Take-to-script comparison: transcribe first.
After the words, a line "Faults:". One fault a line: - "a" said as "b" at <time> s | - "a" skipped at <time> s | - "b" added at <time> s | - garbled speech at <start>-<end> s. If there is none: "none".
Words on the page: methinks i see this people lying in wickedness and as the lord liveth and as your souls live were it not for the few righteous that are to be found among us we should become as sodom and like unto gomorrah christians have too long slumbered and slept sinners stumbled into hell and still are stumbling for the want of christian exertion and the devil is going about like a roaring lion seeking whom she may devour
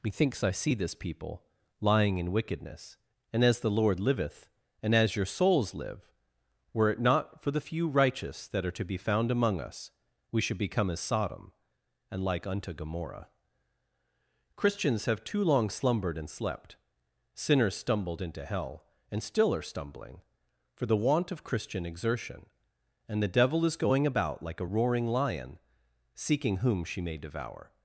methinks i see this people lying in wickedness and as the lord liveth and as your souls live were it not for the few righteous that are to be found among us we should become as sodom and like unto gomorrah christians have too long slumbered and slept sinners stumbled into hell and still are stumbling for the want of christian exertion and the devil is going about like a roaring lion seeking whom she may devour
Faults:
none